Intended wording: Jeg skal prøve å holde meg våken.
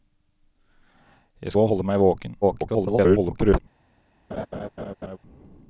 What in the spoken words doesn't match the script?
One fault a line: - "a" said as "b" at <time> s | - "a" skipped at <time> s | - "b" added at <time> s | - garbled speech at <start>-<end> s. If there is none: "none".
- "skal prøve" skipped at 1.6 s
- garbled speech at 2.4-3.6 s